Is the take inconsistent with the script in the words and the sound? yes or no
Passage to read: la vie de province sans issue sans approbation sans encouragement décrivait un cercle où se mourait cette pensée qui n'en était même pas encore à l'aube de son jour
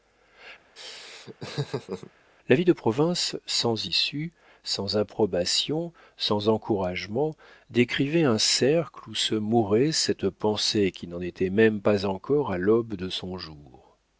yes